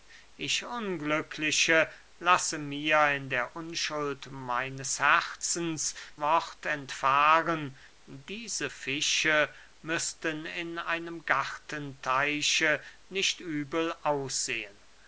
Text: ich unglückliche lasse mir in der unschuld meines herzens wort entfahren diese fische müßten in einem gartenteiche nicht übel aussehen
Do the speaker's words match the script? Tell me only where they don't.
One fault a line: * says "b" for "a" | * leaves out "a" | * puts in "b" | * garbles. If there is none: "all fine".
all fine